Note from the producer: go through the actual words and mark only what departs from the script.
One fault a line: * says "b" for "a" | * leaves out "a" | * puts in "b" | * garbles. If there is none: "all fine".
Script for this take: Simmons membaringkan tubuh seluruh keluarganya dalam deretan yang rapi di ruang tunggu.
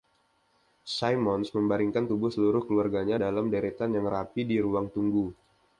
all fine